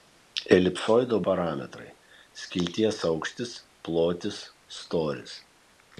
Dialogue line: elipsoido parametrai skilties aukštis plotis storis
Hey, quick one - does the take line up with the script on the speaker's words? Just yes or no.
yes